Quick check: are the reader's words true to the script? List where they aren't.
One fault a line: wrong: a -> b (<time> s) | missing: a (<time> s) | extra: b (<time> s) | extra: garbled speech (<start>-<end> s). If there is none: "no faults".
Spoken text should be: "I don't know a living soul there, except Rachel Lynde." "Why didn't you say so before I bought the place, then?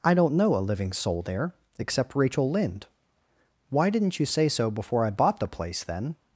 no faults